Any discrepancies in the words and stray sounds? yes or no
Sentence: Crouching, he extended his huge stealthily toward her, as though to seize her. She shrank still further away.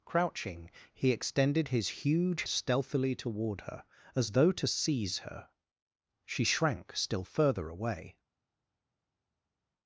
no